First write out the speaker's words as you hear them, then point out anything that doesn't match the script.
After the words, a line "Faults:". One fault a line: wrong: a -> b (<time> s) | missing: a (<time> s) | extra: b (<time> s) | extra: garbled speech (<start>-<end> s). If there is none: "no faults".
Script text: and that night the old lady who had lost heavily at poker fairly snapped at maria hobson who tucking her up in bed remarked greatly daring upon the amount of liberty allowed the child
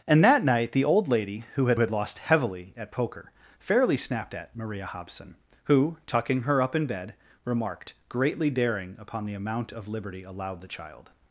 and that night the old lady who had had lost heavily at poker fairly snapped at maria hobson who tucking her up in bed remarked greatly daring upon the amount of liberty allowed the child
Faults:
extra: had (1.8 s)